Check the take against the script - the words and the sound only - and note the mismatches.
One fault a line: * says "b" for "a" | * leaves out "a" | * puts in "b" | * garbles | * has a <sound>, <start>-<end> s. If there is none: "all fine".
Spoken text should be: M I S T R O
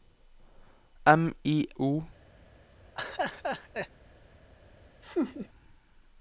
* leaves out "S T R"
* has a laugh, 3.0-3.9 s
* has a laugh, 5.0-5.5 s